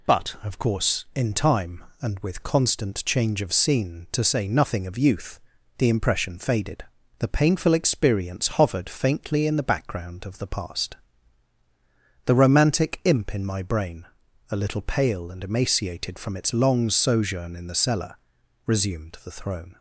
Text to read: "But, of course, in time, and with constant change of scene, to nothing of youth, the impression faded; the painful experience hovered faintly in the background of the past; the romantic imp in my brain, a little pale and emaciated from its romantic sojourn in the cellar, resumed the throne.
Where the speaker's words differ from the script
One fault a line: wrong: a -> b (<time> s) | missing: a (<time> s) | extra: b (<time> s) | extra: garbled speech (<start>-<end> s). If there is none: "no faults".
extra: say (4.2 s)
wrong: romantic -> long (16.5 s)